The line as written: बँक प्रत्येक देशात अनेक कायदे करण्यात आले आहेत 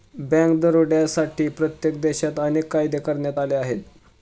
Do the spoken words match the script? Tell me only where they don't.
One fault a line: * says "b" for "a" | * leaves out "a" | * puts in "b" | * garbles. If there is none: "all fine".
* puts in "दरोड्यांसाठी"